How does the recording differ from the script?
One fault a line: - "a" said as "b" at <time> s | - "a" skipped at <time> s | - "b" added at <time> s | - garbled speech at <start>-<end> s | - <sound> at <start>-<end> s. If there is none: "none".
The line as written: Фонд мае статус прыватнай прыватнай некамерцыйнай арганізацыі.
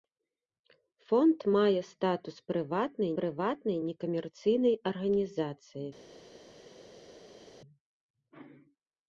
none